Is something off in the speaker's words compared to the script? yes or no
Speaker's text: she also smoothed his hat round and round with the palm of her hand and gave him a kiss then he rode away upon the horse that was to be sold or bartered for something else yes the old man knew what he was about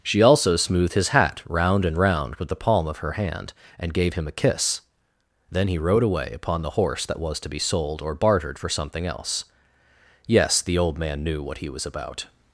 no